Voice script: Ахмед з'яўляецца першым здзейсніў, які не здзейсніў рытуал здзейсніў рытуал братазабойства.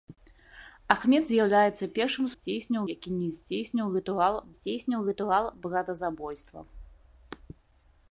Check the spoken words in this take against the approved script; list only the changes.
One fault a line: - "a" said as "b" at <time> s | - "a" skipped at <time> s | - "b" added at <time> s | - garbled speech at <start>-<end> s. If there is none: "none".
none